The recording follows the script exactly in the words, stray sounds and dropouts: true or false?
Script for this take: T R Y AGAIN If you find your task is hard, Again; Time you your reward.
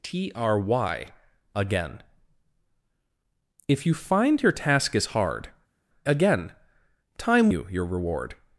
true